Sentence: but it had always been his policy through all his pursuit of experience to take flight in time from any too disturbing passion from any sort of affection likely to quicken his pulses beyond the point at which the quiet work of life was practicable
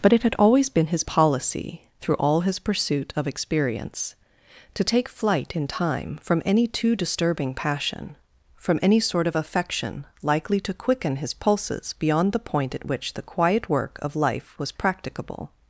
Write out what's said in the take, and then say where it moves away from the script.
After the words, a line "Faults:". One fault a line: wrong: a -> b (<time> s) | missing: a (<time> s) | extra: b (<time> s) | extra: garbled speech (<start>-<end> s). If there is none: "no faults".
but it had always been his policy through all his pursuit of experience to take flight in time from any too disturbing passion from any sort of affection likely to quicken his pulses beyond the point at which the quiet work of life was practicable
Faults:
no faults